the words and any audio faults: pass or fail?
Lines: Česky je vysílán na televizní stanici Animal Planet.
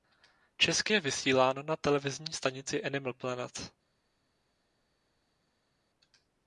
pass